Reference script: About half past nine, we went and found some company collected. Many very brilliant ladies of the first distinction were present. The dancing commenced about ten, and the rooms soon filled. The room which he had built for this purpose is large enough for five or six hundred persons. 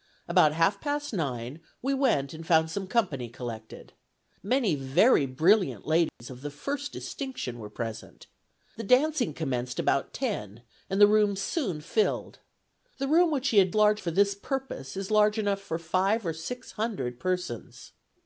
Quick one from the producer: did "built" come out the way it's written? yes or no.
no